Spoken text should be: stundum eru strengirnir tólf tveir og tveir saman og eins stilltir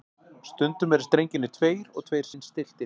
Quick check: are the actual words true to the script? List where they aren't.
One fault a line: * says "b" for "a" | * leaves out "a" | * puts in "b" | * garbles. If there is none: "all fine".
* leaves out "tólf"
* leaves out "saman og"